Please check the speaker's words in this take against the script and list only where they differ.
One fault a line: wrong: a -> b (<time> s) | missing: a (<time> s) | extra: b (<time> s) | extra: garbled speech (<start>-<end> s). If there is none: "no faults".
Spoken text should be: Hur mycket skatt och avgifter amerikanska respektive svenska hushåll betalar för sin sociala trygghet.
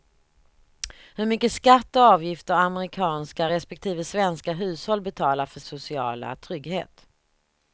missing: sin (5.6 s)